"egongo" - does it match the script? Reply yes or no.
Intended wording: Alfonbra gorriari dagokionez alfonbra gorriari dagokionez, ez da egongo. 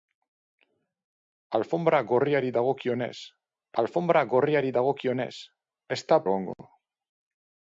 yes